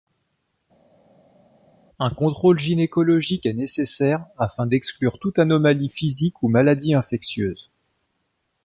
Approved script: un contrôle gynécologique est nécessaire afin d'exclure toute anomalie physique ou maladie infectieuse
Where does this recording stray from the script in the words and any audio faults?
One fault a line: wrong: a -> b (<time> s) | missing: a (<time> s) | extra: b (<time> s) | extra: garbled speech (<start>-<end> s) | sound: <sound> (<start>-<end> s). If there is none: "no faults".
no faults